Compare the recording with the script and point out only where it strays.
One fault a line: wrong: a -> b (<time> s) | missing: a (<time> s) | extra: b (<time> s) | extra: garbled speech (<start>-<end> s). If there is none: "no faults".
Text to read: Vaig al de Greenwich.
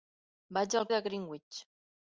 no faults